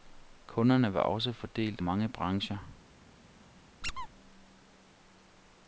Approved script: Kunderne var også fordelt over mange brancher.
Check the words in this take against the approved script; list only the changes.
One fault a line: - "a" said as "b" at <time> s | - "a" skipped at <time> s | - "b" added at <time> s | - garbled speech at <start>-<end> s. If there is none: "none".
- "over" skipped at 1.8 s